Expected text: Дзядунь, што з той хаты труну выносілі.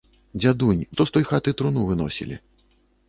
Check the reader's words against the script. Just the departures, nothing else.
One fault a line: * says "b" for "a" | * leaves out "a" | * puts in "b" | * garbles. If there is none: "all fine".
all fine